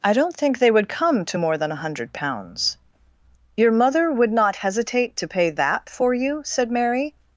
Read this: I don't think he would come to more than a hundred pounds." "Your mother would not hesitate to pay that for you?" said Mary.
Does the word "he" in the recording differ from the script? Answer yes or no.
yes